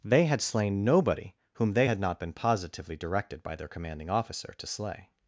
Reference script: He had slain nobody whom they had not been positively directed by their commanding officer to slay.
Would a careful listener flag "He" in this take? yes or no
yes